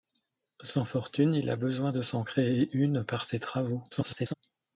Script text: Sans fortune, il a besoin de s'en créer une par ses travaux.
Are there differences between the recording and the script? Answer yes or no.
yes